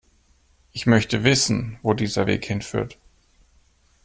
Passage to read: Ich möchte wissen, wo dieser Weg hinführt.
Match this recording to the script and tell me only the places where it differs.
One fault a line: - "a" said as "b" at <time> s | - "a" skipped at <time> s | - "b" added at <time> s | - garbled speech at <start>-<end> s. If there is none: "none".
none